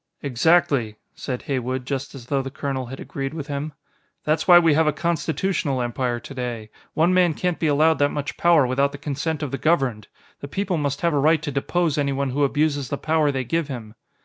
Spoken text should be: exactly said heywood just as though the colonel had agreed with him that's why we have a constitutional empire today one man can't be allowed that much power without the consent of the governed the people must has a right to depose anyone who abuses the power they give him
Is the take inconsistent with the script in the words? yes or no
yes